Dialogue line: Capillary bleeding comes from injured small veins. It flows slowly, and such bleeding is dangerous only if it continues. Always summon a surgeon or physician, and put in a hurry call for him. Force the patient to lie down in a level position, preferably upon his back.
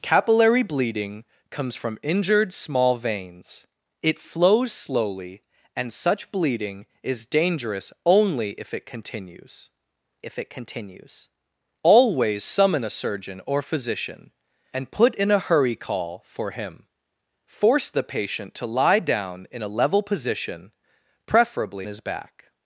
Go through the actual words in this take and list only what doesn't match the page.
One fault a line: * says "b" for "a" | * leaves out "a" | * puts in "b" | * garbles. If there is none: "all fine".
* puts in "if it continues"
* leaves out "upon"